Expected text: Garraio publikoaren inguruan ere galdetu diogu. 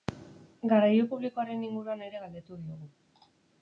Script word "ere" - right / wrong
right